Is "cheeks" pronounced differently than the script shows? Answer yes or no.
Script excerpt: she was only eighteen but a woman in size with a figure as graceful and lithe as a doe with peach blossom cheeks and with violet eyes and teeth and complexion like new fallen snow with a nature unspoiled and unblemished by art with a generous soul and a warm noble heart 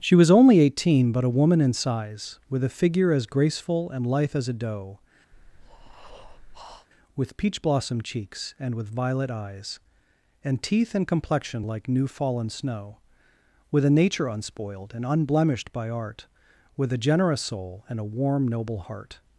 no